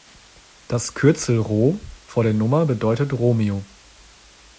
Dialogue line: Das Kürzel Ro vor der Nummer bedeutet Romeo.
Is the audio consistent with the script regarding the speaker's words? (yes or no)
yes